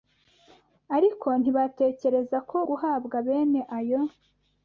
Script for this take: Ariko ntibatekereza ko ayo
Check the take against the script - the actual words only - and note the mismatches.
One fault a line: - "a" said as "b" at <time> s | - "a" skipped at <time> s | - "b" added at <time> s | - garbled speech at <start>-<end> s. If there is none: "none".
- "guhabwa bene" added at 2.7 s